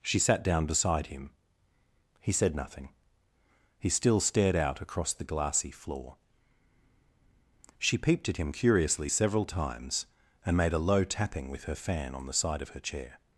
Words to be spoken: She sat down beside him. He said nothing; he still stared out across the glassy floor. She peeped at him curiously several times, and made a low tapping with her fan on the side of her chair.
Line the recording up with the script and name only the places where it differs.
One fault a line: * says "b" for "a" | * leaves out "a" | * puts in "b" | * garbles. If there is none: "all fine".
all fine